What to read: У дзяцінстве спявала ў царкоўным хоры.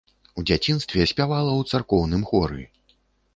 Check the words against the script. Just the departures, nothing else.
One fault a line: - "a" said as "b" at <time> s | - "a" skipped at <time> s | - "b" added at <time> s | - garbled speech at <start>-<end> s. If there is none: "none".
none